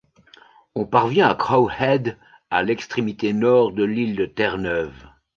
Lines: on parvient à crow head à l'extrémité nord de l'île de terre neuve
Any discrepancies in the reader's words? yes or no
no